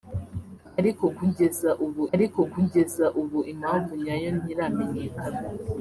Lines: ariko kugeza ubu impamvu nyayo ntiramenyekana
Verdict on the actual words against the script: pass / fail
fail